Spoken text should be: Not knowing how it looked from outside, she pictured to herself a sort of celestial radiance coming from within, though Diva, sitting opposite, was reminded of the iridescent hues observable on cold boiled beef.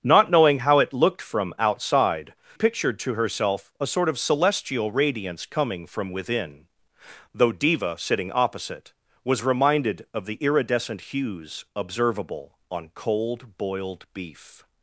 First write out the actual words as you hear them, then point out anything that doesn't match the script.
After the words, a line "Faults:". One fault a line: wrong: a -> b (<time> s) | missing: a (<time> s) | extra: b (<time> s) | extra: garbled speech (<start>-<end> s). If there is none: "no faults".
Not knowing how it looked from outside, pictured to herself a sort of celestial radiance coming from within, though Diva, sitting opposite, was reminded of the iridescent hues observable on cold boiled beef.
Faults:
missing: she (2.3 s)